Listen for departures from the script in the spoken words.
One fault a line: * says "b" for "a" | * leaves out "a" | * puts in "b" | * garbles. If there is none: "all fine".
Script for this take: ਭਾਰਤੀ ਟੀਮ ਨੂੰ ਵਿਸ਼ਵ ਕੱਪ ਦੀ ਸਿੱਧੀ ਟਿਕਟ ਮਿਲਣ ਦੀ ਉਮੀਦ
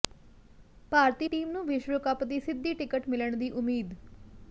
all fine